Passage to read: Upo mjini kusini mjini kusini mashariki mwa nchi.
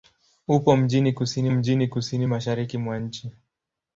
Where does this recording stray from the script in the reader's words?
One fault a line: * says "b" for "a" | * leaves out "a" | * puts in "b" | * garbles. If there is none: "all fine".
all fine